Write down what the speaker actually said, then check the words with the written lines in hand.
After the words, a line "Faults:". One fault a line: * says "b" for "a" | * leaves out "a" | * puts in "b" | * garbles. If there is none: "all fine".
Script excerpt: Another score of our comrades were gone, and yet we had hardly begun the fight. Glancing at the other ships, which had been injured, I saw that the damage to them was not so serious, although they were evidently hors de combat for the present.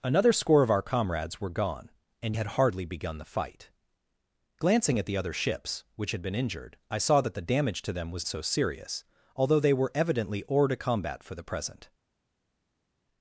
Another score of our comrades were gone, and had hardly begun the fight. Glancing at the other ships, which had been injured, I saw that the damage to them was so serious, although they were evidently hors de combat for the present.
Faults:
* leaves out "yet we"
* leaves out "not"